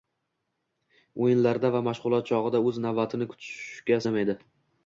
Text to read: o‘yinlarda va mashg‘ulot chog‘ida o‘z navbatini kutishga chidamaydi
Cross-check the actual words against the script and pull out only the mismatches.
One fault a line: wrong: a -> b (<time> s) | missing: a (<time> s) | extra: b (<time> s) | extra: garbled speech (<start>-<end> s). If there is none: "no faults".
no faults